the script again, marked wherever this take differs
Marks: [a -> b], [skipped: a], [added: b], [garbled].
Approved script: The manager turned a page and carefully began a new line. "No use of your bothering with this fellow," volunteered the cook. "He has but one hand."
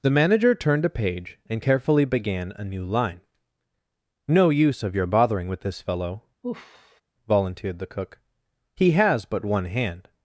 The manager turned a page and carefully began a new line. "No use of your bothering with this fellow," volunteered the cook. "He has but one hand."